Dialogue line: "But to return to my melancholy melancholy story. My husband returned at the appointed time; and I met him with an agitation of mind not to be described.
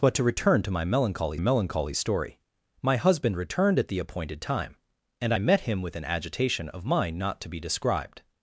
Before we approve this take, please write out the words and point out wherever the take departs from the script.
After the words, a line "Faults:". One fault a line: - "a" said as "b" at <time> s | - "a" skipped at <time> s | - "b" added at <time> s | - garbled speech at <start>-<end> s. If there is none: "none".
"But to return to my melancholy melancholy story. My husband returned at the appointed time; and I met him with an agitation of mind not to be described.
Faults:
none